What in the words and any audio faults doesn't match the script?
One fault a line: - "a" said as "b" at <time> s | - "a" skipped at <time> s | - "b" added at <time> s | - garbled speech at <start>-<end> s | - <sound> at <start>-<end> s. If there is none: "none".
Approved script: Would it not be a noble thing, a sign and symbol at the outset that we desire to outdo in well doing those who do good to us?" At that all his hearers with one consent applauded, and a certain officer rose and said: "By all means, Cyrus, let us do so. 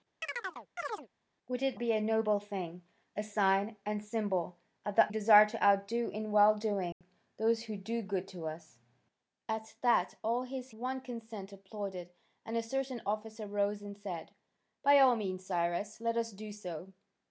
- chirp at 0.2-1.1 s
- "not" skipped at 1.8 s
- "outset that we" skipped at 5.1 s
- dropout at 6.9-7.0 s
- "hearers with" skipped at 10.7 s